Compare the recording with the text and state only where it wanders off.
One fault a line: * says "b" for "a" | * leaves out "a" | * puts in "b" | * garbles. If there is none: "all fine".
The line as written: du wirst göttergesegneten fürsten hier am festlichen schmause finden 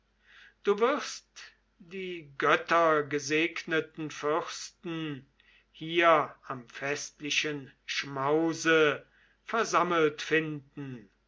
* puts in "die"
* puts in "versammelt"